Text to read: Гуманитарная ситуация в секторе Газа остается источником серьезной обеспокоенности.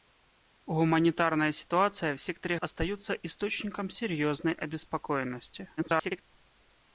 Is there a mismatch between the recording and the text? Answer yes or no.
yes